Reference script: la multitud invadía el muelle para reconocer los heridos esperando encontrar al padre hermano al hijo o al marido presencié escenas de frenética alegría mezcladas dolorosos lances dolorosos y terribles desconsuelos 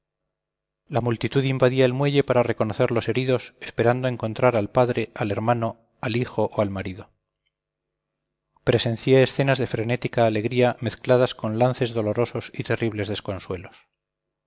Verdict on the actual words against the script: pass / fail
fail